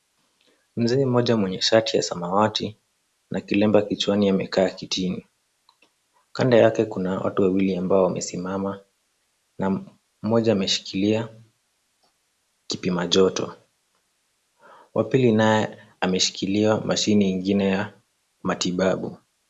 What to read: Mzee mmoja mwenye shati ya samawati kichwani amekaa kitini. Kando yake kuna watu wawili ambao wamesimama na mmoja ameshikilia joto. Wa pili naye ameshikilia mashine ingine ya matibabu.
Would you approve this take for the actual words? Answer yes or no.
no